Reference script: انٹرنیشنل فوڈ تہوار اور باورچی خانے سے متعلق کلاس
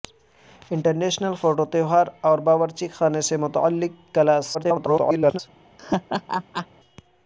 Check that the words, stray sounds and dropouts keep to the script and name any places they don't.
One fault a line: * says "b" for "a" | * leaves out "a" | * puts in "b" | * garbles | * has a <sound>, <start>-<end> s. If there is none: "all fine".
* garbles
* has a laugh, 5.8-6.7 s